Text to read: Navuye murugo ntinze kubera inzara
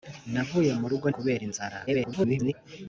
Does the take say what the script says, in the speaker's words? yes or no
no